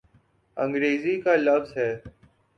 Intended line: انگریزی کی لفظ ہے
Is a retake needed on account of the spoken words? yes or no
yes